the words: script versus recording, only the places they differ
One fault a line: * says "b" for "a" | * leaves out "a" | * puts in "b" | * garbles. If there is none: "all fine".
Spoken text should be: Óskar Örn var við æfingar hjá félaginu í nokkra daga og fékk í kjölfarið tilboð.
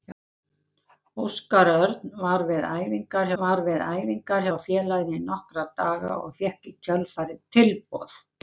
* puts in "var við æfingar"